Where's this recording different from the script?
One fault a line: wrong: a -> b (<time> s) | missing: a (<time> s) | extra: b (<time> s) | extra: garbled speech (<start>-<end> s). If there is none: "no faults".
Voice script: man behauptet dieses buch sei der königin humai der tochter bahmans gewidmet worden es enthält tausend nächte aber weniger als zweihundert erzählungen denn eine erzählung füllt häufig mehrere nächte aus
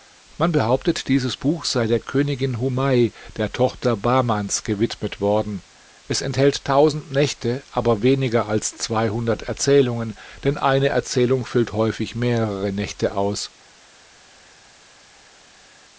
no faults